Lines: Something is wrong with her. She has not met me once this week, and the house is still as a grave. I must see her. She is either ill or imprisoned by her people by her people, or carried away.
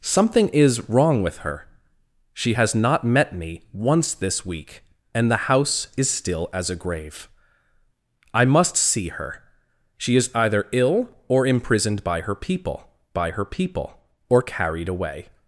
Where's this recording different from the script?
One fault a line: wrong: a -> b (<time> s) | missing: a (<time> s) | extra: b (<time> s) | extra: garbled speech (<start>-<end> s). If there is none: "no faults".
no faults